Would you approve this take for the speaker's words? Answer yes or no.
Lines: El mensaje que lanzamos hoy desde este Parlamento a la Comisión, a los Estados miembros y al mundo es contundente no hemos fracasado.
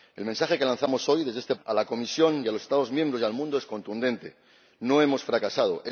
no